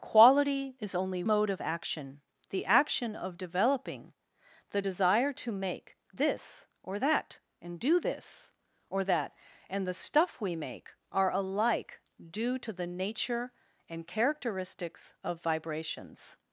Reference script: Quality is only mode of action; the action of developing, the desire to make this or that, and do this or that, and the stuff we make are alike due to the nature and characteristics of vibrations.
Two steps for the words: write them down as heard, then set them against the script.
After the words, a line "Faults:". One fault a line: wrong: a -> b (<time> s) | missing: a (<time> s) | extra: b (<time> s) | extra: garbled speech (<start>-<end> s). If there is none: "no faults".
Quality is only mode of action; the action of developing, the desire to make this or that, and do this or that, and the stuff we make are alike due to the nature and characteristics of vibrations.
Faults:
no faults